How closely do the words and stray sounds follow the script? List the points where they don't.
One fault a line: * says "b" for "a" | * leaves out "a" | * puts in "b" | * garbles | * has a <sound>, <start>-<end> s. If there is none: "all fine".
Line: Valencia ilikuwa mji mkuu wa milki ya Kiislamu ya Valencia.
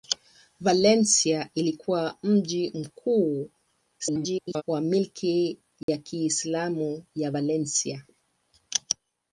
* garbles
* has a dropout, 5.8-5.9 s